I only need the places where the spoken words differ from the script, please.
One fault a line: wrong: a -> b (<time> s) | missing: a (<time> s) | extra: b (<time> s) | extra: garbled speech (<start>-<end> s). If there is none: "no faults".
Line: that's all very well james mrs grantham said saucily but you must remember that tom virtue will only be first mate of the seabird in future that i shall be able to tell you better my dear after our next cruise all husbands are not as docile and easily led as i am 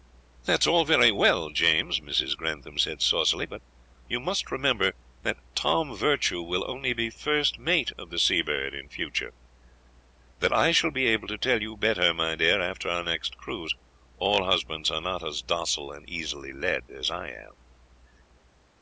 no faults